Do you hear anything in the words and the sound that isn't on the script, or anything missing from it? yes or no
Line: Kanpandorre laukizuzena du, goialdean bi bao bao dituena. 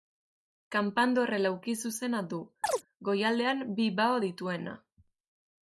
yes